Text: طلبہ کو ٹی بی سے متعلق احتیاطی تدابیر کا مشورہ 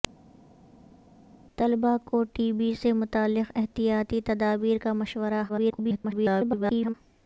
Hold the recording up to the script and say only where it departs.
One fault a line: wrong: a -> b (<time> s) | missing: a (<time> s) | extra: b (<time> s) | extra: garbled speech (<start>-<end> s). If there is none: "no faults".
extra: garbled speech (5.5-6.9 s)